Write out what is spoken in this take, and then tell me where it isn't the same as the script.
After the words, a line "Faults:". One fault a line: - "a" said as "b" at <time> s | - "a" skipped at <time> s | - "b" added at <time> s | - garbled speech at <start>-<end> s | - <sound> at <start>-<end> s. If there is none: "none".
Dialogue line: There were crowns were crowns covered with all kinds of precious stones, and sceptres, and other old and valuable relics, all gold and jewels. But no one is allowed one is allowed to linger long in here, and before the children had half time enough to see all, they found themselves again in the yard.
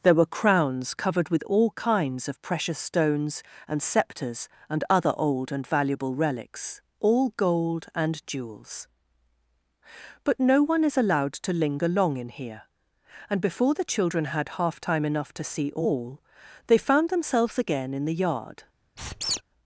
There were crowns covered with all kinds of precious stones, and sceptres, and other old and valuable relics, all gold and jewels. But no one is allowed to linger long in here, and before the children had half time enough to see all, they found themselves again in the yard.
Faults:
- "were crowns" skipped at 0.9 s
- "one is allowed" skipped at 11.3 s
- squeak at 19.0-19.4 s